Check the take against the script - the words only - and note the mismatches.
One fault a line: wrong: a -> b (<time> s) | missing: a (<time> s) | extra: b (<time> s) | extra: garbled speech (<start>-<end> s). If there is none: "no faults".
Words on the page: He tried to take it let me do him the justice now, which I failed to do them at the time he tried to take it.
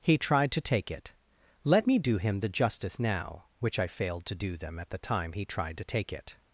no faults